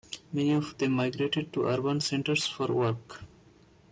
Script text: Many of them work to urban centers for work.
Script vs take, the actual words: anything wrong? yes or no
yes